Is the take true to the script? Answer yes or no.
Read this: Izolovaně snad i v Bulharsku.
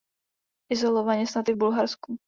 yes